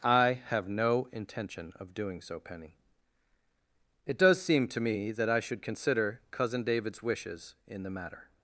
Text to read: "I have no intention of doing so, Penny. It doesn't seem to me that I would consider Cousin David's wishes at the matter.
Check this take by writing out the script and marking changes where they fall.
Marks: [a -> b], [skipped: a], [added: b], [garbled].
"I have no intention of doing so, Penny. It [doesn't -> does] seem to me that I [would -> should] consider Cousin David's wishes [at -> in] the matter.